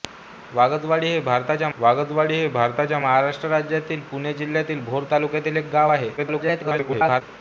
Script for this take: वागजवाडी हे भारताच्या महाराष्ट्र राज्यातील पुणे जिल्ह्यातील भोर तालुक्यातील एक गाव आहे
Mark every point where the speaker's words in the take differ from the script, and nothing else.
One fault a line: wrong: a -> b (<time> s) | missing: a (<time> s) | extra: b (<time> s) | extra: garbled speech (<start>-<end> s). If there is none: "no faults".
extra: वागजवाडी हे भारताच्या (1.8 s)
extra: garbled speech (6.2-7.2 s)